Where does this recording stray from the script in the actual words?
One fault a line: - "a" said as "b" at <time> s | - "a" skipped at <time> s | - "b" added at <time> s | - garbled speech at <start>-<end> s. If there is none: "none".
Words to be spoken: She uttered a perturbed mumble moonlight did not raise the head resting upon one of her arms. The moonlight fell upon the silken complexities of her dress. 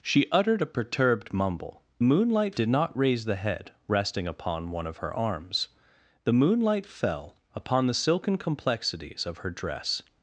none